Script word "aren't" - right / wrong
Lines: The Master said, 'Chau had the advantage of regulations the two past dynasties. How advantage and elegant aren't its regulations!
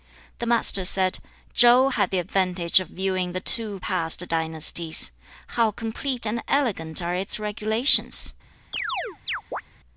wrong